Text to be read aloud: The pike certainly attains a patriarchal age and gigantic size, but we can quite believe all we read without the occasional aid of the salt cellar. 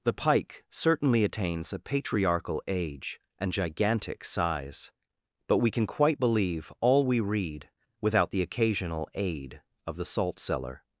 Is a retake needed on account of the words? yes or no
no